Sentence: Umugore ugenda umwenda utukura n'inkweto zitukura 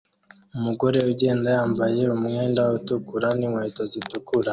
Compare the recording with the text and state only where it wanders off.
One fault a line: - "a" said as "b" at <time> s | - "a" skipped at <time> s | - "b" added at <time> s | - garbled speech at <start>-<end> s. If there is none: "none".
- "yambaye" added at 1.6 s